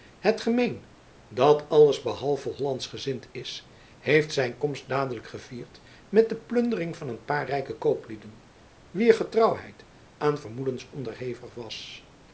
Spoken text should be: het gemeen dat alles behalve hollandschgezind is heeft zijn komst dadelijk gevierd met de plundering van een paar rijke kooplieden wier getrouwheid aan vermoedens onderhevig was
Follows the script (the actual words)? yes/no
yes